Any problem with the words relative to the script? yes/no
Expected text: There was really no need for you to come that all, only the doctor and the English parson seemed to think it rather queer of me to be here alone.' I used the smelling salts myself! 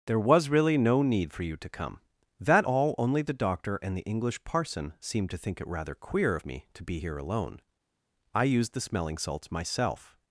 no